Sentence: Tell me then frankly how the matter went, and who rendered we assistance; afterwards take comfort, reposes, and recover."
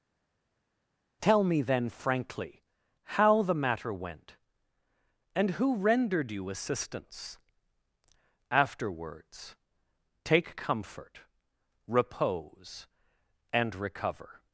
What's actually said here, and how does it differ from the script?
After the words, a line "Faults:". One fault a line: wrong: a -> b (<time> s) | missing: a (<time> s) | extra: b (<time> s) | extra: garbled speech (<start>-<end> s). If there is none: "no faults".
Tell me then frankly how the matter went, and who rendered you assistance; afterwards take comfort, repose, and recover."
Faults:
wrong: we -> you (6.3 s)
wrong: reposes -> repose (11.9 s)